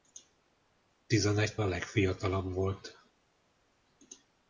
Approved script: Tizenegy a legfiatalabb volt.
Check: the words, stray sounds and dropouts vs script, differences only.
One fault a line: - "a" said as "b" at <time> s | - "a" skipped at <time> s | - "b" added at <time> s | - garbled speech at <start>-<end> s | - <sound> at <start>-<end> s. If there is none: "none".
none